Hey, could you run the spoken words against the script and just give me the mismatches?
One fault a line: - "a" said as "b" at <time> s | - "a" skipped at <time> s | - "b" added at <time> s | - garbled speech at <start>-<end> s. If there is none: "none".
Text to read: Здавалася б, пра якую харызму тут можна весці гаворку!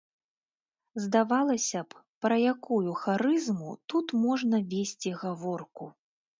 none